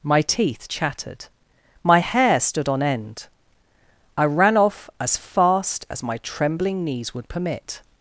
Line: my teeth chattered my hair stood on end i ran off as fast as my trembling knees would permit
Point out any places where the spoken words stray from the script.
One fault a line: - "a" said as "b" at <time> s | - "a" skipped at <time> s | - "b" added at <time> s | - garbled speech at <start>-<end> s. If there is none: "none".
none